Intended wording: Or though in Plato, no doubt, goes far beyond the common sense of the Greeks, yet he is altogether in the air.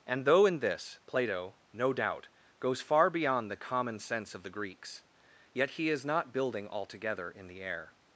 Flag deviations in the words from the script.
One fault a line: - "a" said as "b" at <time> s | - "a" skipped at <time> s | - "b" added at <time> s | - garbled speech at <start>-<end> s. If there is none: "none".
- "Or" said as "And" at 0.1 s
- "this" added at 0.6 s
- "not building" added at 6.0 s